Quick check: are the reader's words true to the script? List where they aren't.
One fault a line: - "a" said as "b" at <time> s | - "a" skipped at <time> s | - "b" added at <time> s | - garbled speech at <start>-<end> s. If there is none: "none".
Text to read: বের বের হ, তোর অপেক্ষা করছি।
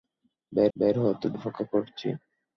none